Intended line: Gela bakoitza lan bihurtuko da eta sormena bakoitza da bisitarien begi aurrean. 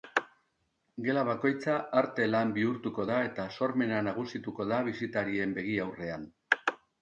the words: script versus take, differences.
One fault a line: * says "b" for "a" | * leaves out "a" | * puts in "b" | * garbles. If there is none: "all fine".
* puts in "arte"
* says "nagusituko" for "bakoitza"